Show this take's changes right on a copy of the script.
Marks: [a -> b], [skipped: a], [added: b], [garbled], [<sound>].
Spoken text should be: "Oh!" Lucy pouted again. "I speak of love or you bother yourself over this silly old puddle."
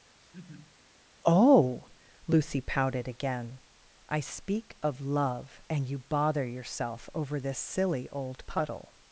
[laugh] "Oh!" Lucy pouted again. "I speak of love [or -> and] you bother yourself over this silly old puddle."